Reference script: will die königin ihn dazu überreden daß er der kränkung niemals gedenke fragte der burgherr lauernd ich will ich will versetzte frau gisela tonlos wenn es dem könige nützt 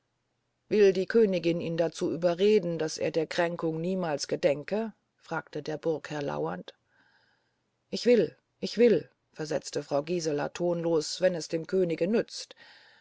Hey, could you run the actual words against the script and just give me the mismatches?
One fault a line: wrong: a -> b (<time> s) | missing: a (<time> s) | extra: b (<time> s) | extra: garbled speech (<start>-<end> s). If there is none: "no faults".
no faults